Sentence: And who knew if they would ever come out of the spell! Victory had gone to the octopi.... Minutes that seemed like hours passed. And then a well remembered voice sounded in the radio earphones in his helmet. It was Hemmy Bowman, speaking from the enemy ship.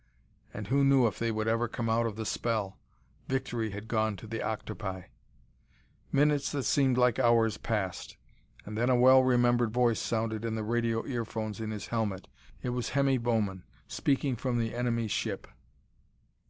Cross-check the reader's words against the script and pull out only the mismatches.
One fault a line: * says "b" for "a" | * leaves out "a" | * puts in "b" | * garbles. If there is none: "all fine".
all fine